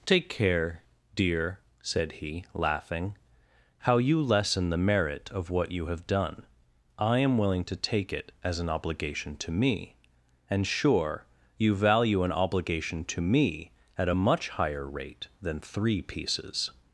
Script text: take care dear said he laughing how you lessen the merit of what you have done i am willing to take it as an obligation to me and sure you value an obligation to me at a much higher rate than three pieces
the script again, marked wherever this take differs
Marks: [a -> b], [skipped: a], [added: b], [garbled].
take care dear said he laughing how you lessen the merit of what you have done i am willing to take it as an obligation to me and sure you value an obligation to me at a much higher rate than three pieces